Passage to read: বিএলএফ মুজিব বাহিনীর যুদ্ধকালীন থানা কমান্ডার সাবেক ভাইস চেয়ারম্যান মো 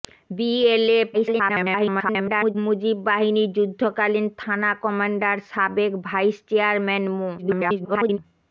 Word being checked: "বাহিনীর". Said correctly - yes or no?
yes